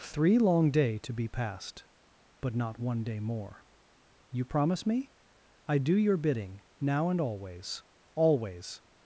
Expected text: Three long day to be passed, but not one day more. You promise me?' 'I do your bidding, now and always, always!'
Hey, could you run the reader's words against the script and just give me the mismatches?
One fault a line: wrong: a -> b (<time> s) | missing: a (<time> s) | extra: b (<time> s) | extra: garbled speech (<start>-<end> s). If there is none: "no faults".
no faults